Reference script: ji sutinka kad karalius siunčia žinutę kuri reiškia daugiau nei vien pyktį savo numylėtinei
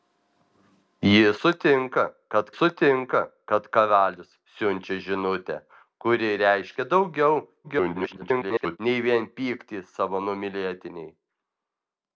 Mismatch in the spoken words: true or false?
true